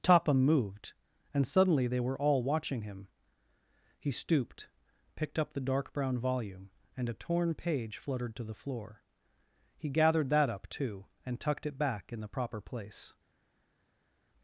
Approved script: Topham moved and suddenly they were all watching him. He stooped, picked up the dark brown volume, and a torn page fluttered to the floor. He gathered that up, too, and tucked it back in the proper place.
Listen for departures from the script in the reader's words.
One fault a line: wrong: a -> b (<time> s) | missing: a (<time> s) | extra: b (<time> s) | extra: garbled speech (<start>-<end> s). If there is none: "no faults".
no faults